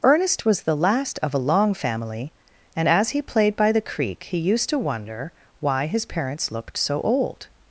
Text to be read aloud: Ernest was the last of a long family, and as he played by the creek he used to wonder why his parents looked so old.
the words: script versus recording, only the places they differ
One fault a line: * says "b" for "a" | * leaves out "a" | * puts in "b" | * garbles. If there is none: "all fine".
all fine